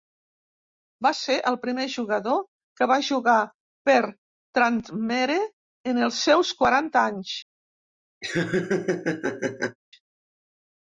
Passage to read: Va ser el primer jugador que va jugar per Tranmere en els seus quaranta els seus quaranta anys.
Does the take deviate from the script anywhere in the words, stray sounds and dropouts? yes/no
yes